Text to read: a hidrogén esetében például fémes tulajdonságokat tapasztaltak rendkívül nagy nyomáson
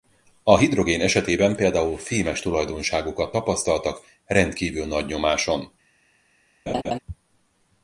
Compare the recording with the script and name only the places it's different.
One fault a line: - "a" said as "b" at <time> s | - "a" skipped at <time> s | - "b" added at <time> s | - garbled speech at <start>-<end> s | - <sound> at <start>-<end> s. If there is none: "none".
- laugh at 6.7-7.0 s